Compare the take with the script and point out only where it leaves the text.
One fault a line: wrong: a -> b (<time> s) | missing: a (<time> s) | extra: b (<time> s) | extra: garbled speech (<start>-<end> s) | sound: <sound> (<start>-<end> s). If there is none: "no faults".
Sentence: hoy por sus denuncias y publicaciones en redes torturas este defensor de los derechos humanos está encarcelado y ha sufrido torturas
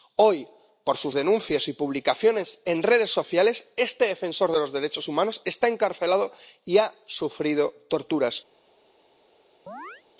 wrong: torturas -> sociales (3.1 s)
sound: chirp (9.7-10.0 s)